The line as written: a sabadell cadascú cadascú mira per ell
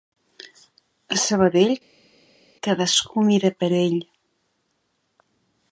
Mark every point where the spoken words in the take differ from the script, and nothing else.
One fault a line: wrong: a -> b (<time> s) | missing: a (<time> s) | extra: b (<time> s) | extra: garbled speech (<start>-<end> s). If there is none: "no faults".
missing: cadascú (3.3 s)